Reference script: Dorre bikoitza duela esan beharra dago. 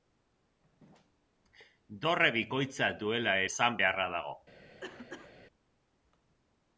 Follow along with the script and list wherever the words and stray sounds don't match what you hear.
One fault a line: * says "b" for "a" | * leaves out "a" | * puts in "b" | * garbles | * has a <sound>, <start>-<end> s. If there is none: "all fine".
* has a cough, 4.8-5.3 s